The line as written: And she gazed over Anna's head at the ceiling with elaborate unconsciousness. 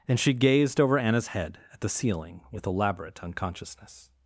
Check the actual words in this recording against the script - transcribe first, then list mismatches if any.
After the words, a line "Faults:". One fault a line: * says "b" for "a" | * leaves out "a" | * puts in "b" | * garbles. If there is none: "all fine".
And she gazed over Anna's head at the ceiling with elaborate unconsciousness.
Faults:
all fine